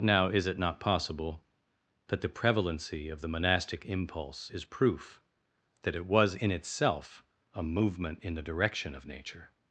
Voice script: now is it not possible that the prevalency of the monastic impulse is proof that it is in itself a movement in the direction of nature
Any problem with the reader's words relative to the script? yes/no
yes